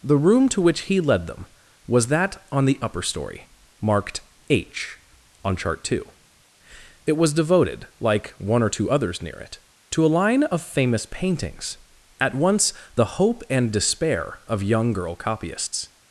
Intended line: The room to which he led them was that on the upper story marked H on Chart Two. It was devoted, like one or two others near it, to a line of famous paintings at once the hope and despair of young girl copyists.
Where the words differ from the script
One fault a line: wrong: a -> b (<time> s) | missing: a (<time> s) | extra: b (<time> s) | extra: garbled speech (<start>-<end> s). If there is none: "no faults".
no faults